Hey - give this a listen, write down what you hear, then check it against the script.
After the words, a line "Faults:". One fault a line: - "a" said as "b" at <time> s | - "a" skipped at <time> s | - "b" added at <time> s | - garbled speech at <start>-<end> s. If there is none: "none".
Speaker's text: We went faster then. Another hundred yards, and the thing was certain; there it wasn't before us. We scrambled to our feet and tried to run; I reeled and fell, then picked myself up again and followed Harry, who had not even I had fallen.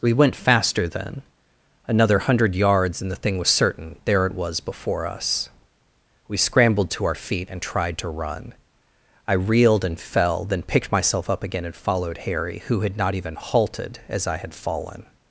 We went faster then. Another hundred yards, and the thing was certain; there it was before us. We scrambled to our feet and tried to run; I reeled and fell, then picked myself up again and followed Harry, who had not even halted as I had fallen.
Faults:
- "wasn't" said as "was" at 4.3 s
- "halted as" added at 13.3 s